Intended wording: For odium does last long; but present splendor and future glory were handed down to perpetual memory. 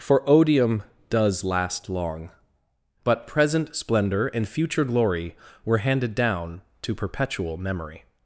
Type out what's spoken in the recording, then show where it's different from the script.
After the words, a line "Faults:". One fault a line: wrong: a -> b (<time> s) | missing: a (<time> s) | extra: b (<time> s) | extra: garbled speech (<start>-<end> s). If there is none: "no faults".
For odium does last long; but present splendor and future glory were handed down to perpetual memory.
Faults:
no faults